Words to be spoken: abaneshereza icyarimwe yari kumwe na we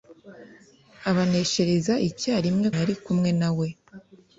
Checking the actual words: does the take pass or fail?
pass